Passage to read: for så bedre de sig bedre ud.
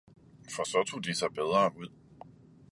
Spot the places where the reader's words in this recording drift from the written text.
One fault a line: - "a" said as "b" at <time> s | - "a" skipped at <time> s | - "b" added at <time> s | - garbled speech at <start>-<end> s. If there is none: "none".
- "bedre" said as "tog" at 0.8 s